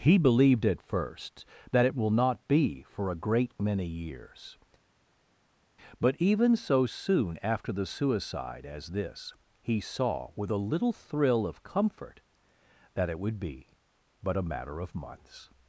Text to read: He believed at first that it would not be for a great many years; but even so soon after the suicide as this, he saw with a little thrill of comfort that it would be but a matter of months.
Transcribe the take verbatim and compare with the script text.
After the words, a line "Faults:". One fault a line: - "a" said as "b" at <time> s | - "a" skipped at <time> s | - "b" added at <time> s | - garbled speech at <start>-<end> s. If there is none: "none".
He believed at first that it will not be for a great many years; but even so soon after the suicide as this, he saw with a little thrill of comfort that it would be but a matter of months.
Faults:
- "would" said as "will" at 1.9 s